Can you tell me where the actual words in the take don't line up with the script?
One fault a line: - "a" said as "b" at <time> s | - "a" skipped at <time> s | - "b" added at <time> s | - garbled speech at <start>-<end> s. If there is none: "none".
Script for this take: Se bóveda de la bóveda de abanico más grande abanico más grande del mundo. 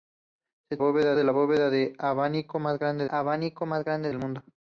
none